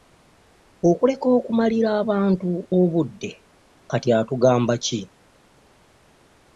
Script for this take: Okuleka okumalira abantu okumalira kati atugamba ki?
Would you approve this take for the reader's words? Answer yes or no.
no